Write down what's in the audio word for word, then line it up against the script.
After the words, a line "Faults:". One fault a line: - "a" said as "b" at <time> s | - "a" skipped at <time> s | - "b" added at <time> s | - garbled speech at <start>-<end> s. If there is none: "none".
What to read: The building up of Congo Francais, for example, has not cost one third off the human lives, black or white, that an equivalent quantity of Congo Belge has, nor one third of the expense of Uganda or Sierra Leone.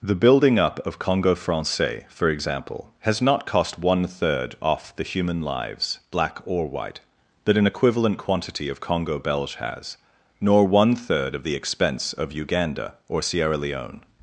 The building up of Congo Francais, for example, has not cost one third off the human lives, black or white, that an equivalent quantity of Congo Belge has, nor one third of the expense of Uganda or Sierra Leone.
Faults:
none